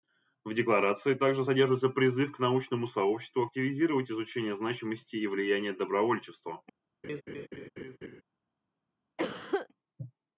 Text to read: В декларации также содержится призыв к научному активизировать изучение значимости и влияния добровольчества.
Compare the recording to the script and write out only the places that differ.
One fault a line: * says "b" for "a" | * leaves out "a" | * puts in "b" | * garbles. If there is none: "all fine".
* puts in "сообществу"